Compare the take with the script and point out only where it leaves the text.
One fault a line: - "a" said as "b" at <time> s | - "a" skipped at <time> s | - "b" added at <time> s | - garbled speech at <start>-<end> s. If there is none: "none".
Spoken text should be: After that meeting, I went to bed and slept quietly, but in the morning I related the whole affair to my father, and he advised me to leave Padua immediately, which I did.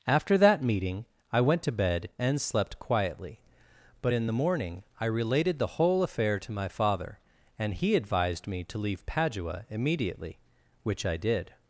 none